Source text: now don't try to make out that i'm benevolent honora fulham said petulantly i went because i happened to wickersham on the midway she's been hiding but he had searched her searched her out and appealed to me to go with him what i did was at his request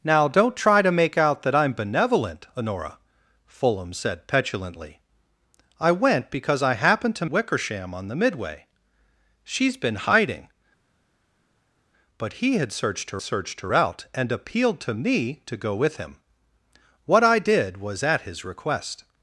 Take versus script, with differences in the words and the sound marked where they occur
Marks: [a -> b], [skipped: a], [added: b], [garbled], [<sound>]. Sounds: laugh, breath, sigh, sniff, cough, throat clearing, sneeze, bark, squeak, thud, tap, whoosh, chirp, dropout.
now don't try to make out that i'm benevolent honora fulham said petulantly i went because i happened to wickersham on the midway she's been hiding but he had searched her searched her out and appealed to me to go with him what i did was at his request